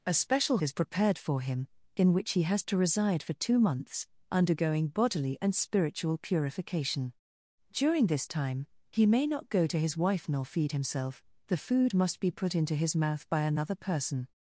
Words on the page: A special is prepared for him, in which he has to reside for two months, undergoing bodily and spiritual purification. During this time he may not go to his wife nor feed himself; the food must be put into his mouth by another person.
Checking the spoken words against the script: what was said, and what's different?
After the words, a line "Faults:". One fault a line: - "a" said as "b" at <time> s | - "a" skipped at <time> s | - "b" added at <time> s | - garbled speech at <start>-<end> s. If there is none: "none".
A special is prepared for him, in which he has to reside for two months, undergoing bodily and spiritual purification. During this time he may not go to his wife nor feed himself; the food must be put into his mouth by another person.
Faults:
none